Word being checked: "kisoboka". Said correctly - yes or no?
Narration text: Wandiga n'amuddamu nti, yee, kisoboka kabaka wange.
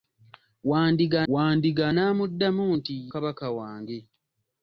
no